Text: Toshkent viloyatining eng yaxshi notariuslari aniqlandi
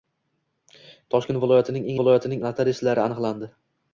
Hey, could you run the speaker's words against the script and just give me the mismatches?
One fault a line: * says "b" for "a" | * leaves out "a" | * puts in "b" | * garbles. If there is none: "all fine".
* says "viloyatining" for "yaxshi"